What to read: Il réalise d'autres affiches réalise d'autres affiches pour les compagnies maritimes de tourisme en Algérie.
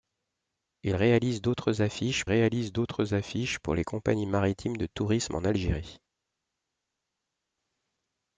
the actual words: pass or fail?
pass